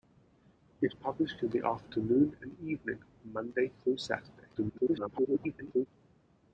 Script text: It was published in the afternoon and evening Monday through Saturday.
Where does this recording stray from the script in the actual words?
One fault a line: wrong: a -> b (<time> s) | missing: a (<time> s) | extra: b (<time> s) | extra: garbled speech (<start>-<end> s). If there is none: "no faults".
missing: was (0.9 s)
extra: garbled speech (4.5-5.9 s)